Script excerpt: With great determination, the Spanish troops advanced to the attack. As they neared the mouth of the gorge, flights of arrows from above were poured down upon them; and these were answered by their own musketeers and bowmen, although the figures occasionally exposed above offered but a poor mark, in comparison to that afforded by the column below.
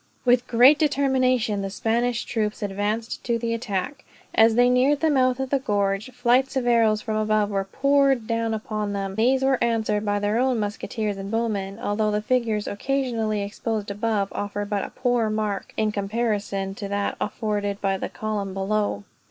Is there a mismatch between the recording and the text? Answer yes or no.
yes